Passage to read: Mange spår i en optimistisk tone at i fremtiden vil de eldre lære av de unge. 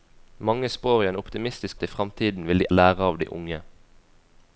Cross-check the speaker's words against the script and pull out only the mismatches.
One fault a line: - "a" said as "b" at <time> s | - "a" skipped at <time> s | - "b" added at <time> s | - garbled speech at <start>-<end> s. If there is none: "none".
- "tone" skipped at 1.8 s
- "eldre" skipped at 2.7 s